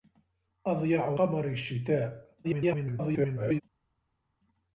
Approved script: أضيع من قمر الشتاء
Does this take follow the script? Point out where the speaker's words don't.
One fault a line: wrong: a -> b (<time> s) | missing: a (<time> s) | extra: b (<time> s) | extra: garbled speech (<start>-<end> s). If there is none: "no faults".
missing: من (1.1 s)
extra: garbled speech (2.4-3.6 s)